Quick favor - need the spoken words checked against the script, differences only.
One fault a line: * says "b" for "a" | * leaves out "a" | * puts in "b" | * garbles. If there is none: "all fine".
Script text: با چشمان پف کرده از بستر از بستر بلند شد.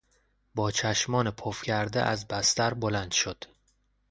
* leaves out "از بستر"